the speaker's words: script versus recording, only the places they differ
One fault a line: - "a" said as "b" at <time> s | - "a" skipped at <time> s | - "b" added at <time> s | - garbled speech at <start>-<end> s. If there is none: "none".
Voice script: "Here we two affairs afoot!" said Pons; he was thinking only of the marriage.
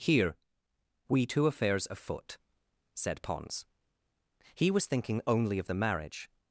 none